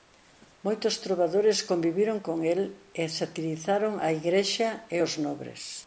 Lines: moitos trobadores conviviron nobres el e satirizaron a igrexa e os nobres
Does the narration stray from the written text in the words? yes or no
yes